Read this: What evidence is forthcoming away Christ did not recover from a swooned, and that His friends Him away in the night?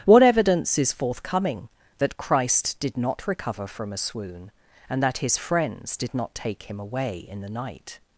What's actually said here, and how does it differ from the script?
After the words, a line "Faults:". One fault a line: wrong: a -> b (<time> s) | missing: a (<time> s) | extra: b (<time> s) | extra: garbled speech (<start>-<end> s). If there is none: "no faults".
What evidence is forthcoming that Christ did not recover from a swoon, and that His friends did not take Him away in the night?
Faults:
wrong: away -> that (2.0 s)
wrong: swooned -> swoon (4.0 s)
extra: did not take (6.0 s)